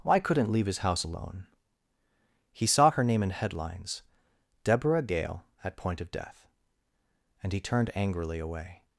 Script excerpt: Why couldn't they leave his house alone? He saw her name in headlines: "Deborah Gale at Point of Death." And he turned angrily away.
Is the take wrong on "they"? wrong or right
wrong